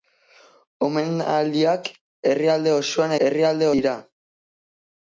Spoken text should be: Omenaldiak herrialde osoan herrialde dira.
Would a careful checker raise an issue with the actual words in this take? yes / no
no